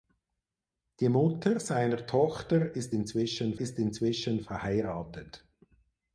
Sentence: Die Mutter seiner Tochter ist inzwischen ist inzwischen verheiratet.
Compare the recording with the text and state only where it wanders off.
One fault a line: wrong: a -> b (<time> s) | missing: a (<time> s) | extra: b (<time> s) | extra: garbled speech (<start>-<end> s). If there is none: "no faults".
no faults